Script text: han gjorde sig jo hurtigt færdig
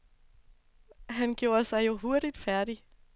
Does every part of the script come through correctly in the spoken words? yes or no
yes